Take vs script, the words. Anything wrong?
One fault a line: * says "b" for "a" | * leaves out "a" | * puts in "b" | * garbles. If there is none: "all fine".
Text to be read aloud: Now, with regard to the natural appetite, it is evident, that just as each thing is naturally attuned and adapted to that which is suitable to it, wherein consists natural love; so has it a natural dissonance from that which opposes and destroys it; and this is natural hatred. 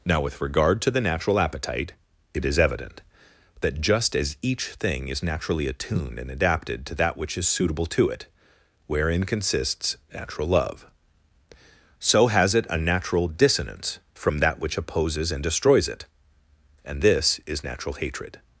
all fine